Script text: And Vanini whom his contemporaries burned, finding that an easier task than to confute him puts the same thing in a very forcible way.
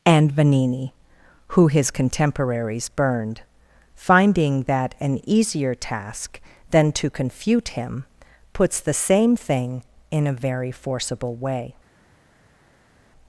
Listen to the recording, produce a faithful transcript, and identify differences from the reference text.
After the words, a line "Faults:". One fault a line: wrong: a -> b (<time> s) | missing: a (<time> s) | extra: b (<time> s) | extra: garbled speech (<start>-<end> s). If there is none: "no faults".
And Vanini who his contemporaries burned, finding that an easier task than to confute him puts the same thing in a very forcible way.
Faults:
wrong: whom -> who (1.5 s)